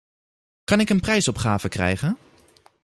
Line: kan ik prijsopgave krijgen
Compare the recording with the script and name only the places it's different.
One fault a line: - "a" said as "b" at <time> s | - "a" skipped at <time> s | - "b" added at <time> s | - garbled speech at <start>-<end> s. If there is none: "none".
- "een" added at 0.9 s